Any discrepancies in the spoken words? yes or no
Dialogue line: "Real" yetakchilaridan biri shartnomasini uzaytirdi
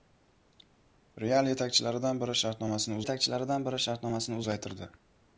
yes